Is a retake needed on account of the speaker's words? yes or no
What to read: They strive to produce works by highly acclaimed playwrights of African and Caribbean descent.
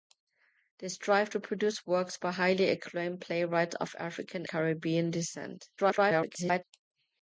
yes